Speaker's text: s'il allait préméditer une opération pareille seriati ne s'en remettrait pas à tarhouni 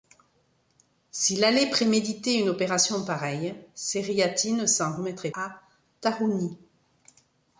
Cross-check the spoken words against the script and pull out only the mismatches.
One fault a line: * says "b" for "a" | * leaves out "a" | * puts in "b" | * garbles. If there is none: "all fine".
* leaves out "pas"